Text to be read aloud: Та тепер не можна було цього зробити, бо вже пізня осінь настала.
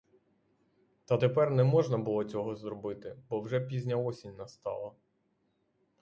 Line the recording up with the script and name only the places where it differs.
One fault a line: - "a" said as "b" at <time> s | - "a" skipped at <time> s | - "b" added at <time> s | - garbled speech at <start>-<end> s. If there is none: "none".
none